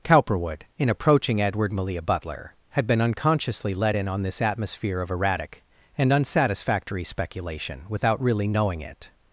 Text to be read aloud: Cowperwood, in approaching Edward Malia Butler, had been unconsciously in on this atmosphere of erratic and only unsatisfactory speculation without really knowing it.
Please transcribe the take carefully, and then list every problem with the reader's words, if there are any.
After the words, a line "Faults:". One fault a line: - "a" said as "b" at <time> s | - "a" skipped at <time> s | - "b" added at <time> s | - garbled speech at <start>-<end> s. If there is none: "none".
Cowperwood, in approaching Edward Malia Butler, had been unconsciously let in on this atmosphere of erratic and unsatisfactory speculation without really knowing it.
Faults:
- "let" added at 3.8 s
- "only" skipped at 6.1 s